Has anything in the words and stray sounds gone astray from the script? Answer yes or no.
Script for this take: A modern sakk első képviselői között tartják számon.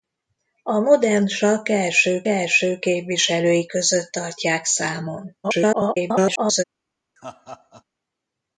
yes